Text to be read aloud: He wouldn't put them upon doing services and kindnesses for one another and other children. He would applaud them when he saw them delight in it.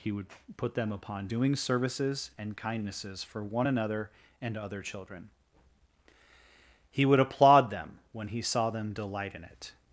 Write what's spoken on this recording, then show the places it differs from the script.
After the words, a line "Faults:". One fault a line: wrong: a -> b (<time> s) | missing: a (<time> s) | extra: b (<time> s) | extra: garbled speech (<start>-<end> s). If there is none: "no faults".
He would put them upon doing services and kindnesses for one another and other children. He would applaud them when he saw them delight in it.
Faults:
wrong: wouldn't -> would (0.1 s)